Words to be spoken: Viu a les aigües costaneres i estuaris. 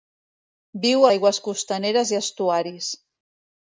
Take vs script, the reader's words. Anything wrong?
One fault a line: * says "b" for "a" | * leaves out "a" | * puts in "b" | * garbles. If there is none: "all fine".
* leaves out "les"